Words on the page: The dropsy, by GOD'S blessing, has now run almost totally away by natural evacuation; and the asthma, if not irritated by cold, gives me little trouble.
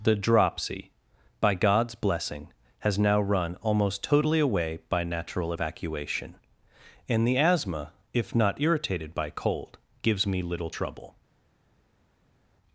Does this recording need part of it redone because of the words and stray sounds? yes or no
no